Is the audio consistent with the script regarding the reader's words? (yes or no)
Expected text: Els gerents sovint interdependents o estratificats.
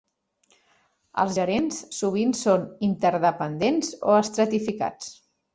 no